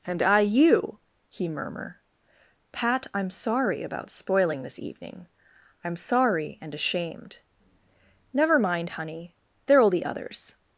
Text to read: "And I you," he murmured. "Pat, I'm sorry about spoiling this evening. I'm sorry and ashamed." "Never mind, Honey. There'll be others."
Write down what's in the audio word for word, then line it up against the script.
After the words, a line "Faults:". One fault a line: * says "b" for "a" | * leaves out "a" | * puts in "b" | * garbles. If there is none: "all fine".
"And I you," he murmur. "Pat, I'm sorry about spoiling this evening. I'm sorry and ashamed." "Never mind, Honey. There'll be others."
Faults:
* says "murmur" for "murmured"